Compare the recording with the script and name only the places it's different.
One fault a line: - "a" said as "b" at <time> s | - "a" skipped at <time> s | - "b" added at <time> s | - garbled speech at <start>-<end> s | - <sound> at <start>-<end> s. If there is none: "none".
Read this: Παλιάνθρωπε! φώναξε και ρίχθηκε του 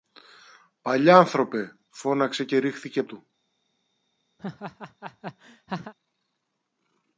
- laugh at 4.4-5.9 s